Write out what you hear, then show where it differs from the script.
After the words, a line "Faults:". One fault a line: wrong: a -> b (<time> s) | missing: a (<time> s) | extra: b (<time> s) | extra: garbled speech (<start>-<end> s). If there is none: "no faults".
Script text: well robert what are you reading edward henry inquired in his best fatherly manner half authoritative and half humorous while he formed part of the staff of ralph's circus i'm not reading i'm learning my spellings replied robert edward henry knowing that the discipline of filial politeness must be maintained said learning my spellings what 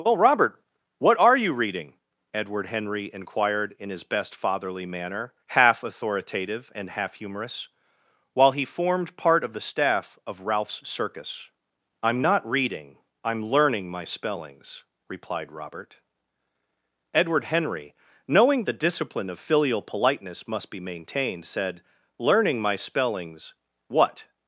well robert what are you reading edward henry inquired in his best fatherly manner half authoritative and half humorous while he formed part of the staff of ralph's circus i'm not reading i'm learning my spellings replied robert edward henry knowing the discipline of filial politeness must be maintained said learning my spellings what
Faults:
missing: that (18.6 s)